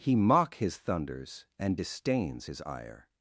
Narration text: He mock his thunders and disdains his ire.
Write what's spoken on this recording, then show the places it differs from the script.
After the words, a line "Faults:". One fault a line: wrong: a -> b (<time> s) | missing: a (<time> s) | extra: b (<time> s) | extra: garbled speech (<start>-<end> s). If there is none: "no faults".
He mock his thunders and disdains his ire.
Faults:
no faults